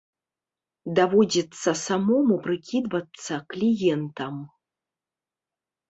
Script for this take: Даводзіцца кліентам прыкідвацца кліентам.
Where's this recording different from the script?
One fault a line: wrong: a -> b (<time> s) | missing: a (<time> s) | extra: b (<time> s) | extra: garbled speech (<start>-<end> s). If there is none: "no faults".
wrong: кліентам -> самому (1.9 s)